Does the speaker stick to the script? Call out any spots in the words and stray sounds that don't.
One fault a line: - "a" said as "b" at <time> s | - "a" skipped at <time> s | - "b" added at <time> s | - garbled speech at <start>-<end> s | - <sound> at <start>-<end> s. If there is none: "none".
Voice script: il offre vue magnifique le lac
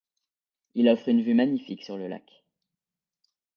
- "une" added at 1.1 s
- "sur" added at 1.8 s